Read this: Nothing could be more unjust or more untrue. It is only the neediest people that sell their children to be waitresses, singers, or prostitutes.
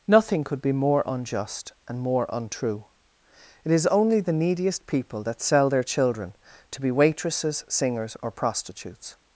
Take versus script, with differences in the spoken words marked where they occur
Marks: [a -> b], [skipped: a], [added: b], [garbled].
Nothing could be more unjust [or -> and] more untrue. It is only the neediest people that sell their children to be waitresses, singers, or prostitutes.